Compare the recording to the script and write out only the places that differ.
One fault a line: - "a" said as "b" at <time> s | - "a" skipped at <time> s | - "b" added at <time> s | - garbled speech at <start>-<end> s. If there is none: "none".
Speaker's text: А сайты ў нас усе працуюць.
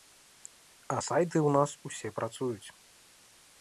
none